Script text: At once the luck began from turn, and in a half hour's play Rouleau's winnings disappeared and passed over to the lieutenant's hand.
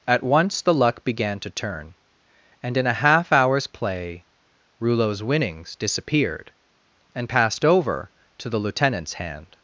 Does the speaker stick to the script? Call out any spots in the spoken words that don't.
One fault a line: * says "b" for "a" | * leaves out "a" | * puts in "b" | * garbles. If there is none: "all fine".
* says "to" for "from"